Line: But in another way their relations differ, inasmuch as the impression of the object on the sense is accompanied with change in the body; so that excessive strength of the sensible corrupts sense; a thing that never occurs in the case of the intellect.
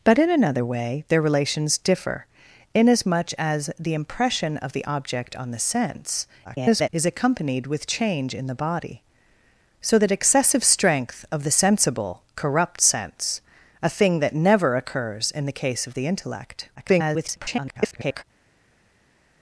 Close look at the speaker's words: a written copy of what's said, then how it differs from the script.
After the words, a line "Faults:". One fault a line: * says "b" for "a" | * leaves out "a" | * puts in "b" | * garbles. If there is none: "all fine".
But in another way their relations differ, inasmuch as the impression of the object on the sense [garbled] is accompanied with change in the body; so that excessive strength of the sensible corrupts sense; a thing that never occurs in the case of the intellect. [garbled]
Faults:
* garbles
* garbles